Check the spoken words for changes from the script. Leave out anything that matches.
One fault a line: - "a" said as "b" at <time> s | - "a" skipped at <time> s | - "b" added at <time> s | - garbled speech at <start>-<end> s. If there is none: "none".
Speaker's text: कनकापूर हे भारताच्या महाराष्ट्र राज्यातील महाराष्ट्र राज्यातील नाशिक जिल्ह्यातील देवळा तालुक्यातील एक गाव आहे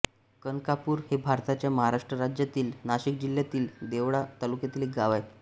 - "महाराष्ट्र राज्यातील" skipped at 2.7 s